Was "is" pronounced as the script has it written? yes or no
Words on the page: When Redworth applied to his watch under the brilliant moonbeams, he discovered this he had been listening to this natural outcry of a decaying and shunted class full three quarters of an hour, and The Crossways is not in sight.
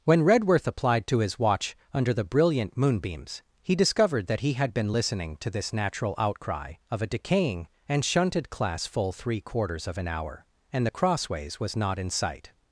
no